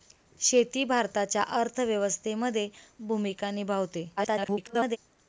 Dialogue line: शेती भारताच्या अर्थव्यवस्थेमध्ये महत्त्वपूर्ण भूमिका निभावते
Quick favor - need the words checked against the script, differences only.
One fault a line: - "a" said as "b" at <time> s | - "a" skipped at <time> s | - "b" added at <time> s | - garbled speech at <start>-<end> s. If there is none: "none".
- "महत्त्वपूर्ण" skipped at 2.7 s
- garbled speech at 4.2-5.0 s